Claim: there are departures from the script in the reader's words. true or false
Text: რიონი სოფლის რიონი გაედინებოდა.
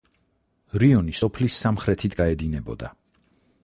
true